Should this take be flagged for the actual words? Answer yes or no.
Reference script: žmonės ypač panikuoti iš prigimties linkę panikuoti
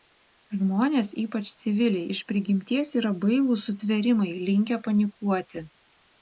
yes